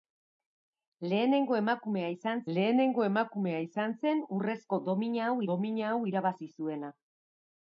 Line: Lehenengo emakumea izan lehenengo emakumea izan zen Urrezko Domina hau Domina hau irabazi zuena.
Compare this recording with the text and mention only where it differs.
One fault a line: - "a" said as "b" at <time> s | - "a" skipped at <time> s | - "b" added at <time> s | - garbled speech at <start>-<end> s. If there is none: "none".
none